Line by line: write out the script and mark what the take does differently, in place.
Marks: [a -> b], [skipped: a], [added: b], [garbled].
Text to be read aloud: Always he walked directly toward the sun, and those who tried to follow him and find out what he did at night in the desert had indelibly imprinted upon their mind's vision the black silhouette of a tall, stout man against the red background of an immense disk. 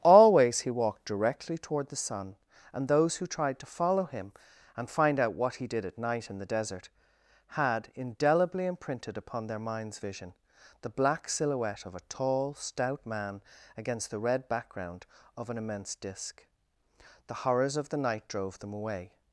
Always he walked directly toward the sun, and those who tried to follow him and find out what he did at night in the desert had indelibly imprinted upon their mind's vision the black silhouette of a tall, stout man against the red background of an immense disk. [added: The horrors of the night drove them away]